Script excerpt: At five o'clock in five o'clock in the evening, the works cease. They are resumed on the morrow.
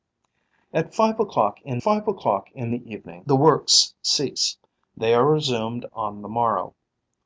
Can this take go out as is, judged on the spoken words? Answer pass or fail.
pass